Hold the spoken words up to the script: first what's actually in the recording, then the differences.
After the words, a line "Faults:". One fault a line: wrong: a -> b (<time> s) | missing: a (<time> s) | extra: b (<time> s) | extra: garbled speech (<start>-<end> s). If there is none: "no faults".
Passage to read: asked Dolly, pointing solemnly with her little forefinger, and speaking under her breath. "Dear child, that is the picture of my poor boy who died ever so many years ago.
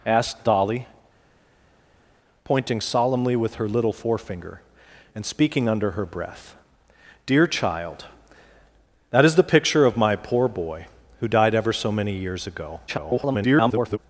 asked Dolly, pointing solemnly with her little forefinger, and speaking under her breath. "Dear child, that is the picture of my poor boy who died ever so many years ago. [garbled]
Faults:
extra: garbled speech (12.9-14.0 s)